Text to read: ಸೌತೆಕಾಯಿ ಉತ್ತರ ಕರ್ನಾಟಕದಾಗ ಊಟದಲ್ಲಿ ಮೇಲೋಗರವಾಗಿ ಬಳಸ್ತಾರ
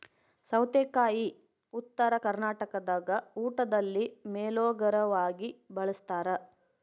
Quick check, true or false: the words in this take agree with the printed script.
true